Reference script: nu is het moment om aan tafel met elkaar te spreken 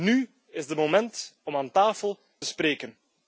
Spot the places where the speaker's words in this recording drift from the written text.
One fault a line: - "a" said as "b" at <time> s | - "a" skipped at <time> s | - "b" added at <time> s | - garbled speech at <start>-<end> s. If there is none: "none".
- "met elkaar te" skipped at 2.2 s